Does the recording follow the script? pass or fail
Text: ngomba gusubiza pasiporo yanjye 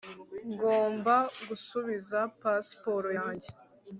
pass